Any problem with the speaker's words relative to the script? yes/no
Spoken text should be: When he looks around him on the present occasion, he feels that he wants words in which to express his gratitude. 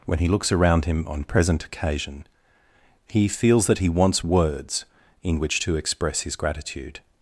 yes